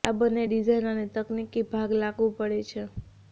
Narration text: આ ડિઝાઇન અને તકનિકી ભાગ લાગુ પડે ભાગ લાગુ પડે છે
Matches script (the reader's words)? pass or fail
fail